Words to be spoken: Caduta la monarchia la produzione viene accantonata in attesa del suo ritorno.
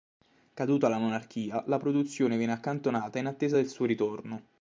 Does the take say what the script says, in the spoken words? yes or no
yes